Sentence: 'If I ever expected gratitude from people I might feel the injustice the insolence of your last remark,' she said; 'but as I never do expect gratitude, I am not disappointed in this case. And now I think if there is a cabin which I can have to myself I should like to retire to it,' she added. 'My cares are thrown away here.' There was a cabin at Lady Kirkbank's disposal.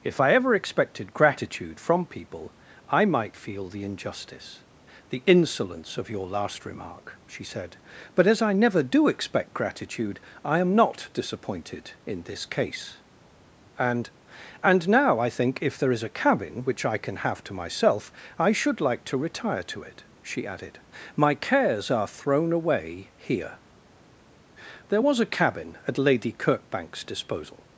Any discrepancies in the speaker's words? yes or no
yes